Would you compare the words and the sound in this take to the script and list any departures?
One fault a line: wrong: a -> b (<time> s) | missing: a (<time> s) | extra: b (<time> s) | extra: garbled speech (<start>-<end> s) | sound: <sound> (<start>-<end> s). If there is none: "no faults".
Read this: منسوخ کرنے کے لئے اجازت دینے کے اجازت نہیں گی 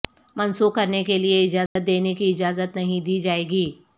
sound: dropout (1.7-1.8 s)
wrong: کے -> کی (2.1 s)
extra: دی جائے (3.0 s)